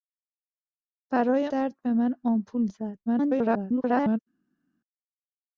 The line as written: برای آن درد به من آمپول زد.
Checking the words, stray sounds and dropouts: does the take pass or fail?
fail